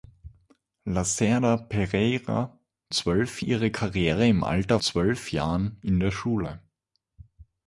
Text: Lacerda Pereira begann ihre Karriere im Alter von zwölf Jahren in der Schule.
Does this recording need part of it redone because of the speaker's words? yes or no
yes